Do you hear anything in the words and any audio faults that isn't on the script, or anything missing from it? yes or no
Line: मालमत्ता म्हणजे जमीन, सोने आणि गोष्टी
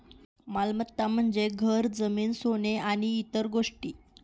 yes